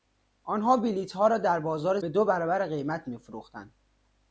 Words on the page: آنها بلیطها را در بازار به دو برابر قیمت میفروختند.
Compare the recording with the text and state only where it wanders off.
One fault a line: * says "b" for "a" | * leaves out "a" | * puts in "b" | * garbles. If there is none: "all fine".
all fine